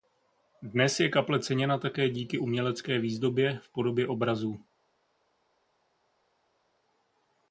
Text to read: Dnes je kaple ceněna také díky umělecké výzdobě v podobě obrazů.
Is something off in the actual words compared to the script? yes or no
no